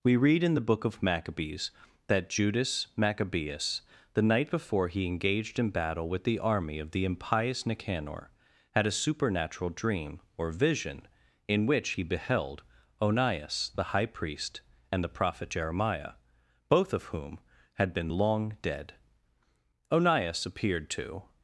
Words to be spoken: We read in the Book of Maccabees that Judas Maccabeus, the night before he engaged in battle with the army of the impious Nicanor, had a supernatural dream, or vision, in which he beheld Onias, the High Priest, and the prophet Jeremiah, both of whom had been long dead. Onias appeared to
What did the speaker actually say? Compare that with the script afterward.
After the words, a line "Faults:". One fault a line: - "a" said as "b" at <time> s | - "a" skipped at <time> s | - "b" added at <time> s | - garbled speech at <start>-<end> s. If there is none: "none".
We read in the Book of Maccabees that Judas Maccabeus, the night before he engaged in battle with the army of the impious Nicanor, had a supernatural dream, or vision, in which he beheld Onias, the High Priest, and the prophet Jeremiah, both of whom had been long dead. Onias appeared to
Faults:
none